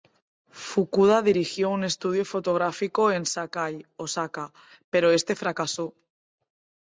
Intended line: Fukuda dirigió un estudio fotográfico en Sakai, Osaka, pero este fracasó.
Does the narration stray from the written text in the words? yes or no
no